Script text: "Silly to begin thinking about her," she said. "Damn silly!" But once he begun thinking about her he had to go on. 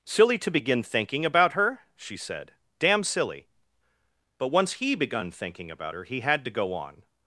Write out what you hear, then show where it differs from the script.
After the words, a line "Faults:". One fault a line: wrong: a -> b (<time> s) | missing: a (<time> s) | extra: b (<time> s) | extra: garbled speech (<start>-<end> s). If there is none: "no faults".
"Silly to begin thinking about her," she said. "Damn silly!" But once he begun thinking about her he had to go on.
Faults:
no faults